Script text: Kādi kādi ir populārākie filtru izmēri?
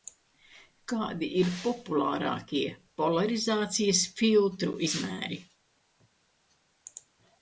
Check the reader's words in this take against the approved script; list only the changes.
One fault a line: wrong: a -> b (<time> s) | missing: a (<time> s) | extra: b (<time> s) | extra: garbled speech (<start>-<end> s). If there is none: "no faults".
missing: kādi (1.3 s)
extra: polarizācijas (3.0 s)